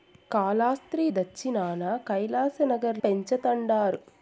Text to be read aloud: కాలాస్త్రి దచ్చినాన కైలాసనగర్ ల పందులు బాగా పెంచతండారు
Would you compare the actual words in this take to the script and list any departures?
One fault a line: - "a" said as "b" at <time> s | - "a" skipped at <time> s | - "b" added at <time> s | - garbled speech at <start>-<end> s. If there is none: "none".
- "ల పందులు బాగా" skipped at 3.0 s